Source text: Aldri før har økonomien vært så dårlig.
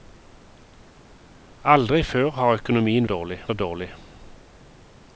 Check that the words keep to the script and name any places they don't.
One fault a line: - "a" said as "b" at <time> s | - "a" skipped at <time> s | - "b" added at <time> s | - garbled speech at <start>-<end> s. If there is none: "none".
- "vært" said as "dårlig" at 3.0 s